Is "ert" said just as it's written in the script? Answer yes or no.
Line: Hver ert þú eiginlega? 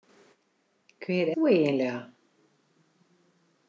no